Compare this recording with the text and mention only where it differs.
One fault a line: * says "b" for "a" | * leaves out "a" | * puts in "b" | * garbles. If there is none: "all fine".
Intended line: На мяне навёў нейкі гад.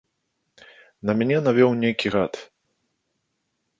all fine